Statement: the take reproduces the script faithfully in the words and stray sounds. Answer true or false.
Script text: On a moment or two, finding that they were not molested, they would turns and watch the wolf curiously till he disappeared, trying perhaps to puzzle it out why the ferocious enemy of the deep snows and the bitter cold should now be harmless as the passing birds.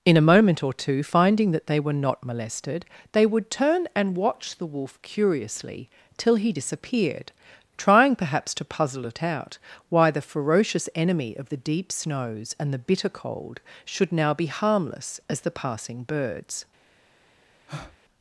false